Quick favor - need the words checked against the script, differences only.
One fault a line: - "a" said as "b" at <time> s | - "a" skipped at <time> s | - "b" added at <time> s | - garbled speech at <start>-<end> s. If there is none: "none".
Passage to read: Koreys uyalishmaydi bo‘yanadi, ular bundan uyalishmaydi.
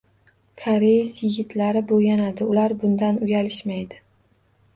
- "uyalishmaydi" said as "yigitlari" at 1.2 s